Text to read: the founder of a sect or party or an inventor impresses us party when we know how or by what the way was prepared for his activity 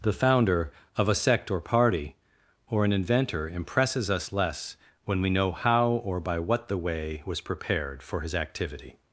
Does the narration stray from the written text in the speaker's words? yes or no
yes